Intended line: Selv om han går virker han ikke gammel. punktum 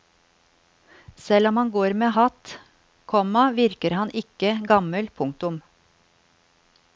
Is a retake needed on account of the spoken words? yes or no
yes